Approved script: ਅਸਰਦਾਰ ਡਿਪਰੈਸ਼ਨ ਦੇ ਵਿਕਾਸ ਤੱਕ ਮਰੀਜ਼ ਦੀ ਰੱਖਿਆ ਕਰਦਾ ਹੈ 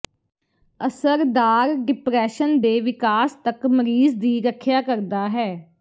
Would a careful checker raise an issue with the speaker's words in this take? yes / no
no